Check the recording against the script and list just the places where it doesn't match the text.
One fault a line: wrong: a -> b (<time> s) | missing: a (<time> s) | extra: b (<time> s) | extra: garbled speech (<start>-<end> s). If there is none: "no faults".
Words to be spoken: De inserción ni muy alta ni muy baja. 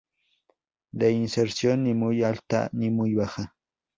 no faults